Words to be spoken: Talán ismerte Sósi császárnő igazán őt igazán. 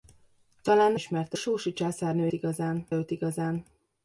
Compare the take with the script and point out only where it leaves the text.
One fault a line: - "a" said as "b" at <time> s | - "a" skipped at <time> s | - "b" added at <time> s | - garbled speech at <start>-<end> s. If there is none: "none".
none